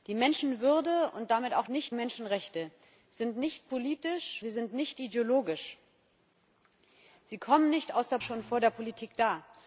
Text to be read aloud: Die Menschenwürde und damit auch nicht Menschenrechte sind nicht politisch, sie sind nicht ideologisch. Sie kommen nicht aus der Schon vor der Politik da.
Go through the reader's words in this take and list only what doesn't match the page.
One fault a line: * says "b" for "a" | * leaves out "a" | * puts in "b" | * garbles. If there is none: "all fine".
all fine